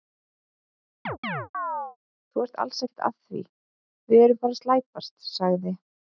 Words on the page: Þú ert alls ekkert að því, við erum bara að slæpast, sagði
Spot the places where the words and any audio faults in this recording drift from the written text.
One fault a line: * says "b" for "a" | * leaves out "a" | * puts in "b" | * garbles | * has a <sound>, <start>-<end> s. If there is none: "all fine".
* has a chirp, 1.1-2.0 s